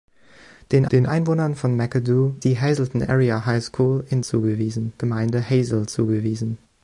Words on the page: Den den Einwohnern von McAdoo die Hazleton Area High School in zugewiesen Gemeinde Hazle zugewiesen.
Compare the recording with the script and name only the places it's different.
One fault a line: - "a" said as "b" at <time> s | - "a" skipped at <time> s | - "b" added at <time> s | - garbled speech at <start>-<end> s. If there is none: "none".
none